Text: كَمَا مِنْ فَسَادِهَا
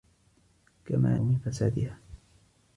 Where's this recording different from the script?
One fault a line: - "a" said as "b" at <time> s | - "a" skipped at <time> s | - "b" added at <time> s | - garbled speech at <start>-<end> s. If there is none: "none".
none